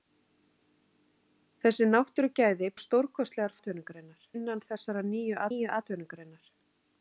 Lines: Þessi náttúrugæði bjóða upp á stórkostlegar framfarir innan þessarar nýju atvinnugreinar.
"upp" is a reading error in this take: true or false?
true